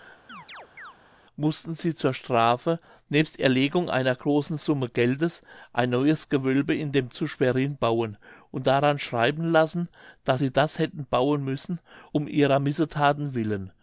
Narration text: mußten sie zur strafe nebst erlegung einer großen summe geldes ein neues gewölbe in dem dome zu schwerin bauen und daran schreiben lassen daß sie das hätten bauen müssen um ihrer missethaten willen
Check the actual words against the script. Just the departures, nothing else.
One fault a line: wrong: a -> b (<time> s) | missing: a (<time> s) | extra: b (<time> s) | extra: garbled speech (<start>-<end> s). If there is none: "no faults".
missing: dome (7.1 s)